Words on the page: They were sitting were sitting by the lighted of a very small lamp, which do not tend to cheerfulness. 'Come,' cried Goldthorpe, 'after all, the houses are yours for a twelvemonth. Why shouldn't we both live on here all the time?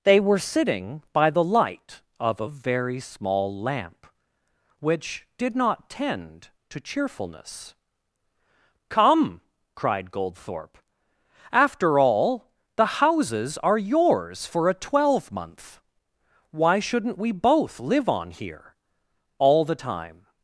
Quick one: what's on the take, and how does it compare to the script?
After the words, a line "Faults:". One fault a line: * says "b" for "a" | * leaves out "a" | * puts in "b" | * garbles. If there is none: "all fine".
They were sitting by the light of a very small lamp, which did not tend to cheerfulness. 'Come,' cried Goldthorpe, 'after all, the houses are yours for a twelvemonth. Why shouldn't we both live on here all the time?
Faults:
* leaves out "were sitting"
* says "light" for "lighted"
* says "did" for "do"